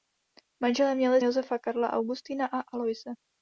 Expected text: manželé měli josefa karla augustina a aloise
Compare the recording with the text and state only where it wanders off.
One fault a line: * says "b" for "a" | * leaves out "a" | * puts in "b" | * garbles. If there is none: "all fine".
all fine